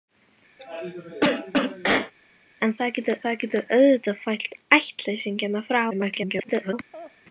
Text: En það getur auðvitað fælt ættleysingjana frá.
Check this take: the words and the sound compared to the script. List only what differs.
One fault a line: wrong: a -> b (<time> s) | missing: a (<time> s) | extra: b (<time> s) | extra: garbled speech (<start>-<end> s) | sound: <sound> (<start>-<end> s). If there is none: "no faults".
sound: cough (0.6-2.1 s)
extra: það getur (3.2 s)
extra: garbled speech (5.9-6.7 s)
sound: laugh (6.9-7.2 s)